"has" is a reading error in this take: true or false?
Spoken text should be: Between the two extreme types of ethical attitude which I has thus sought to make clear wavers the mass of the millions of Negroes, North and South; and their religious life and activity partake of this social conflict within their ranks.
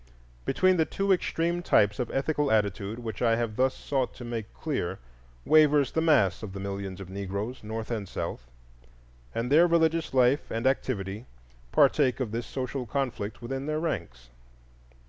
true